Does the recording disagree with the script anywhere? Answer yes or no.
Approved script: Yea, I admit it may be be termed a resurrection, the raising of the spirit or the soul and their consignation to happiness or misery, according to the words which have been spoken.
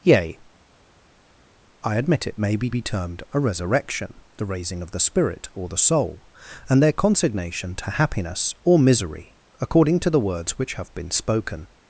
no